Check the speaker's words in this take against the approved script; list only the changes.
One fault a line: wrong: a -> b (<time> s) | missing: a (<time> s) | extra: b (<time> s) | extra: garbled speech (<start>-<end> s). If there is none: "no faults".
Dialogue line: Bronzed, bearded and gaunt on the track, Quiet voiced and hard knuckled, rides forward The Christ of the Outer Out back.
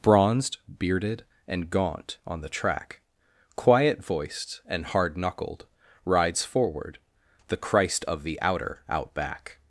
no faults